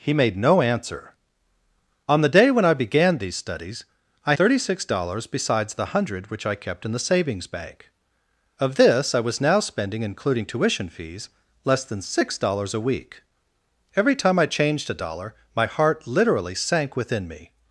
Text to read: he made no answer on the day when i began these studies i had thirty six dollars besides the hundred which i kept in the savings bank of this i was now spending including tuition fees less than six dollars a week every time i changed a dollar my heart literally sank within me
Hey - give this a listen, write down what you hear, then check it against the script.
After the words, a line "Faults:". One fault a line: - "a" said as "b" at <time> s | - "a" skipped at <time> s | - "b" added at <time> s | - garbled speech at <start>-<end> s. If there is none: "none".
he made no answer on the day when i began these studies i thirty six dollars besides the hundred which i kept in the savings bank of this i was now spending including tuition fees less than six dollars a week every time i changed a dollar my heart literally sank within me
Faults:
- "had" skipped at 4.3 s